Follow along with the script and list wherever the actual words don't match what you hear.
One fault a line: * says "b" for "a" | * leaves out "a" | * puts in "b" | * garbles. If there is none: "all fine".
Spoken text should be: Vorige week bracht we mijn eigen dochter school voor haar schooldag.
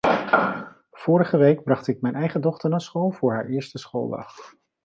* says "ik" for "we"
* puts in "naar"
* puts in "eerste"